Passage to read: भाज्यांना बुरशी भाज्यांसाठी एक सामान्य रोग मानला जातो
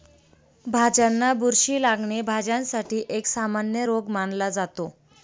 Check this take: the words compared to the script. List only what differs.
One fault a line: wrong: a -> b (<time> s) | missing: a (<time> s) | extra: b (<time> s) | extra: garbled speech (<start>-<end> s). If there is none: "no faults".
extra: लागणे (1.8 s)